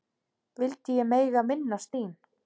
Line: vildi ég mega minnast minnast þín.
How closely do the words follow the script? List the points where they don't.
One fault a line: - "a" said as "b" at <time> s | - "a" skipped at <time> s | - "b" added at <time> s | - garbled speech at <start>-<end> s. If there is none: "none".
- "minnast" skipped at 1.9 s